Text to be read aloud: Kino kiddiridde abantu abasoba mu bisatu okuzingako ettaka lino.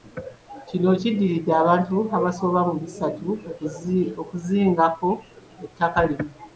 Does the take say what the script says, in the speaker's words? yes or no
yes